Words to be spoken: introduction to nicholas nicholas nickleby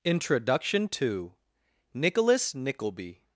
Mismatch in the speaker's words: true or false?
true